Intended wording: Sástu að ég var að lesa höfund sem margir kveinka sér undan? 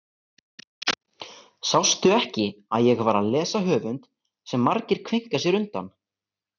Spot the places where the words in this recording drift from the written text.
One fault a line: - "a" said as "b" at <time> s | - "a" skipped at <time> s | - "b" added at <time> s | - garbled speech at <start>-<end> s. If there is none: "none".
- "ekki" added at 2.2 s